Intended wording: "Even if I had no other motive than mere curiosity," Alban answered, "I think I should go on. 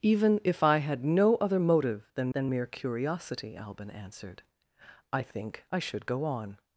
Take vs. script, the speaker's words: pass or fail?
fail